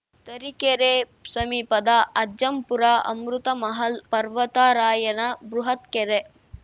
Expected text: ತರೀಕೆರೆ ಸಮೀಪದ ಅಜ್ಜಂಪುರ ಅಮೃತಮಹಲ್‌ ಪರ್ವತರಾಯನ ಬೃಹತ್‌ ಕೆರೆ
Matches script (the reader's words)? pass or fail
pass